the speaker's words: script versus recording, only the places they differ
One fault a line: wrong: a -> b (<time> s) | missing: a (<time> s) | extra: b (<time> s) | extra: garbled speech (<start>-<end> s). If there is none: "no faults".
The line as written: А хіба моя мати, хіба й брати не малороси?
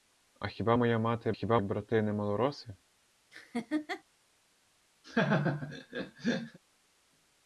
no faults